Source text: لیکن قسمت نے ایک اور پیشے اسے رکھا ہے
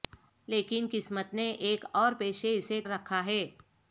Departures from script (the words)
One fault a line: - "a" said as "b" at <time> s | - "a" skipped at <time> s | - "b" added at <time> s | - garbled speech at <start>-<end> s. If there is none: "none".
none